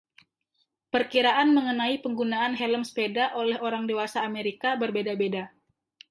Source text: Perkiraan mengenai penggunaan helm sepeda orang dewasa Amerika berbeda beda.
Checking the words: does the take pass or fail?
fail